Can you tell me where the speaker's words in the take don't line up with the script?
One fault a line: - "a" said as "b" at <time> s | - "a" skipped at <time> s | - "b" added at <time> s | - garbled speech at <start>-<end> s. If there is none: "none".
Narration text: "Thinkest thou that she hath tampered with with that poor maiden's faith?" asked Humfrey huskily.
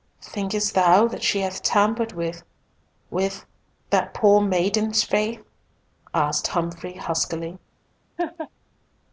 none